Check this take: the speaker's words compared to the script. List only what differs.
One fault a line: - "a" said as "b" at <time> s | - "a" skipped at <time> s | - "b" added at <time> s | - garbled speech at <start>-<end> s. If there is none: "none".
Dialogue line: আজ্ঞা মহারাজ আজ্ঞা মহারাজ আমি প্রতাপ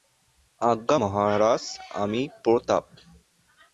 - "আজ্ঞা মহারাজ" skipped at 1.6 s